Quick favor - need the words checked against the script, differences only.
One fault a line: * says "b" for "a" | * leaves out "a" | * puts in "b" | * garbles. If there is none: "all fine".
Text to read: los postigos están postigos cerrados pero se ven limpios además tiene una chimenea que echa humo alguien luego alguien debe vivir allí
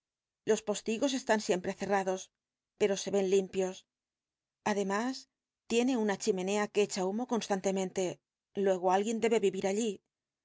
* says "siempre" for "postigos"
* says "constantemente" for "alguien"